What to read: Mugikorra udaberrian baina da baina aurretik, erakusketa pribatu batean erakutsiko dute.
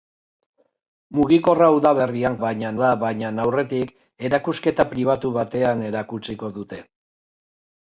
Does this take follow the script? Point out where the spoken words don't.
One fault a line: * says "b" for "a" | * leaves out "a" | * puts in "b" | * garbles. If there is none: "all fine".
all fine